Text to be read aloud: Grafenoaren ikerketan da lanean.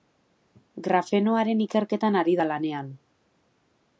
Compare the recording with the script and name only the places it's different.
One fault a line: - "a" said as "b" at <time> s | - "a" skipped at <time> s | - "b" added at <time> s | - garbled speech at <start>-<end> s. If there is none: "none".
- "ari" added at 2.2 s